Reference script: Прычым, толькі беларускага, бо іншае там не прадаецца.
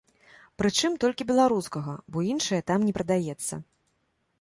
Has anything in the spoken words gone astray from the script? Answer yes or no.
no